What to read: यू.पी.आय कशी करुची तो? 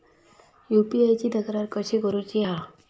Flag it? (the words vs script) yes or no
yes